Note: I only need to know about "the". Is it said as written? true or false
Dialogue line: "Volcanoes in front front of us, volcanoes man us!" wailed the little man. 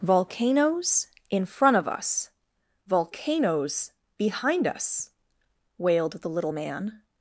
true